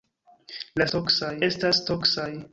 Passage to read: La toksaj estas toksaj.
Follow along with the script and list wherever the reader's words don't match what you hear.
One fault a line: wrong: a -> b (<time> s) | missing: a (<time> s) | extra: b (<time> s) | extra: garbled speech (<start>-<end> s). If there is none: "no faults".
no faults